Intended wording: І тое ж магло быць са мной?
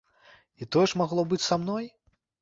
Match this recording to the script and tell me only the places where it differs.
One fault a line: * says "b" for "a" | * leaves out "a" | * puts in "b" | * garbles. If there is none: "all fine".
all fine